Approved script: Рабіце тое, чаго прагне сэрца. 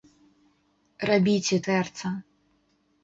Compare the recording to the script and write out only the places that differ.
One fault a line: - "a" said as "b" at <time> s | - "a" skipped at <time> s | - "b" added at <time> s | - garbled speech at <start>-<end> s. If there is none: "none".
- "тое чаго прагне" skipped at 1.6 s